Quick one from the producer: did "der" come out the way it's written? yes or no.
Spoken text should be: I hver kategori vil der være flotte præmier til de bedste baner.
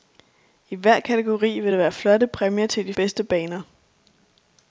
yes